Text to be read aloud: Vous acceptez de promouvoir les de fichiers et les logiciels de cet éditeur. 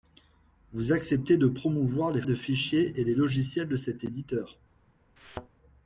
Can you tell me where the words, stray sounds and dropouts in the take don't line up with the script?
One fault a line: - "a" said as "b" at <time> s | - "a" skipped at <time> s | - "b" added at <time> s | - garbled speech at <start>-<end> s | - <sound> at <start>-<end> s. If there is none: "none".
- thud at 5.2-5.5 s